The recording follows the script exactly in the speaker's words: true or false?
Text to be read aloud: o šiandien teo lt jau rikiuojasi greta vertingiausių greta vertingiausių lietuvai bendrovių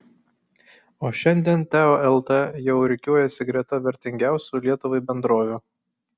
false